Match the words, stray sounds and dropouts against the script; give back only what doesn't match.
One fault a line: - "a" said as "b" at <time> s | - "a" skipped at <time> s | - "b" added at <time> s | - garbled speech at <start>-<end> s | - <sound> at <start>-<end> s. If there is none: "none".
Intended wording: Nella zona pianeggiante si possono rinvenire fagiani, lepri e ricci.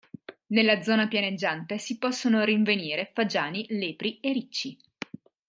none